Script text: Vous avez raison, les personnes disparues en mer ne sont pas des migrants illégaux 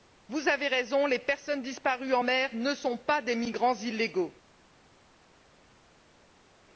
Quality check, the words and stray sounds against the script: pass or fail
pass